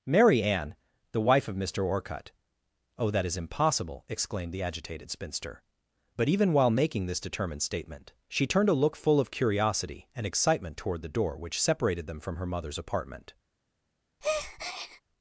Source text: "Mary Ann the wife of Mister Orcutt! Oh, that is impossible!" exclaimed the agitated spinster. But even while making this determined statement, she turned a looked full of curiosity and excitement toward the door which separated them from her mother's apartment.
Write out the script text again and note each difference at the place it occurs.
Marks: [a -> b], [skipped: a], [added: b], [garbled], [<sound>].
"Mary Ann the wife of Mister Orcutt! Oh, that is impossible!" exclaimed the agitated spinster. But even while making this determined statement, she turned a [looked -> look] full of curiosity and excitement toward the door which separated them from her mother's apartment. [breath]